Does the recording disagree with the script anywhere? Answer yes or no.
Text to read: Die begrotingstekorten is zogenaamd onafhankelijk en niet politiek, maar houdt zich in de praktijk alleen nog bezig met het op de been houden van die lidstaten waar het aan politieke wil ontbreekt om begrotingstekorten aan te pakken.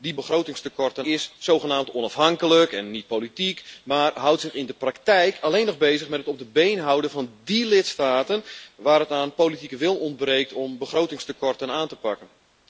no